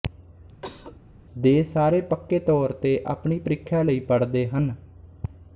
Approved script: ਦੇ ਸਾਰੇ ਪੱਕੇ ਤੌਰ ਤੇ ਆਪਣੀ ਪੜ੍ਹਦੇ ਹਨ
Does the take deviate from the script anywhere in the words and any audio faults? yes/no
yes